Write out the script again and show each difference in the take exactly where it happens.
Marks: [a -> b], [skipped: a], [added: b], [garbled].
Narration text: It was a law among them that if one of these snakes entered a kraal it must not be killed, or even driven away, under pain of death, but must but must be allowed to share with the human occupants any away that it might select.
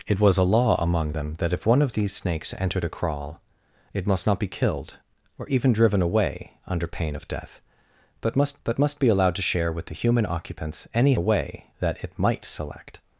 It was a law among them that if one of these snakes entered a kraal it must not be killed, or even driven away, under pain of death, but must but must be allowed to share with the human occupants any away that it might select.